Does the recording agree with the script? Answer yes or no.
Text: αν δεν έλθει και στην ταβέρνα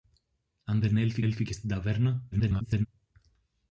no